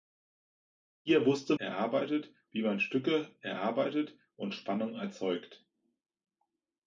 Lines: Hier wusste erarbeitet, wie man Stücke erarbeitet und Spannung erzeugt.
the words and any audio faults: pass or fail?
pass